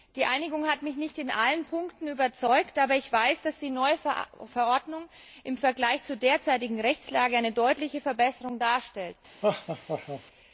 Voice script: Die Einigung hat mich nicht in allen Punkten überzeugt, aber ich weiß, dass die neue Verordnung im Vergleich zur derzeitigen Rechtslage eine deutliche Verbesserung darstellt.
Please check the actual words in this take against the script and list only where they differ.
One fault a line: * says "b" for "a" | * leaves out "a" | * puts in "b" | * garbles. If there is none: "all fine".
all fine